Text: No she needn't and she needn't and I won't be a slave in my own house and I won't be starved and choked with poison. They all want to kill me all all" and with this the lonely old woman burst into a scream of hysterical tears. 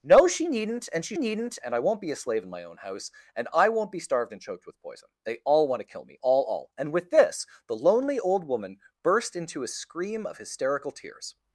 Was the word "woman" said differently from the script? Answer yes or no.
no